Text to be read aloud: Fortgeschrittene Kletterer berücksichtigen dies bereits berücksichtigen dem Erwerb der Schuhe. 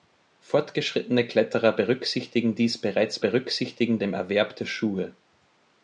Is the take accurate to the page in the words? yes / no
yes